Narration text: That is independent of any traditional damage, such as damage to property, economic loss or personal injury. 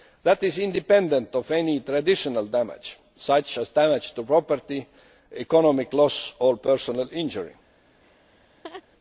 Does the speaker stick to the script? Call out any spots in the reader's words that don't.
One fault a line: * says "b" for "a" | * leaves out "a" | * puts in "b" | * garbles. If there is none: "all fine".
all fine